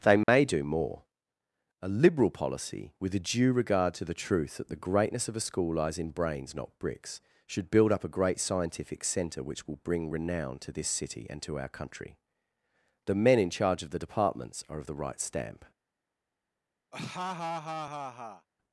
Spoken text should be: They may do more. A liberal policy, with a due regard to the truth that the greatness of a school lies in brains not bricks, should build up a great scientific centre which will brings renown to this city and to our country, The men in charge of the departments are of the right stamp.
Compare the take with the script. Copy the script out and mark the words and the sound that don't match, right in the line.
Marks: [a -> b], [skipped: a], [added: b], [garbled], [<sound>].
They may [dropout] do more. A liberal policy, with a due regard to the truth that the greatness of a school lies in brains not bricks, should build up a great scientific centre which will [brings -> bring] renown to this city and to our country, The men in charge of the departments are of the right stamp. [laugh]